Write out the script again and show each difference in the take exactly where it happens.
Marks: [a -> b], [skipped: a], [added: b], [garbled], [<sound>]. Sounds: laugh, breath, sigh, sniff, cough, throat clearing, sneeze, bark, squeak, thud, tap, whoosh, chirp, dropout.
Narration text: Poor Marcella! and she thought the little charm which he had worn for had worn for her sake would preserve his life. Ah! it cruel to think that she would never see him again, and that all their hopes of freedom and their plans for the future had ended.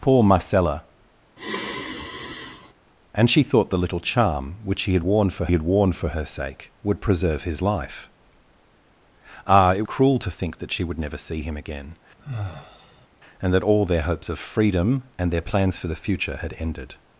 Poor Marcella! [sigh] and she thought the little charm which he had worn for had worn for her sake would preserve his life. Ah! it cruel to think that she would never see him again, [sigh] and that all their hopes of freedom and their plans for the future had ended.